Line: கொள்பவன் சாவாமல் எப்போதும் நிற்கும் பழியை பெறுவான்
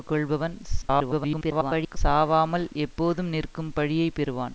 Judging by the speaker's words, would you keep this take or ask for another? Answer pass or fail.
fail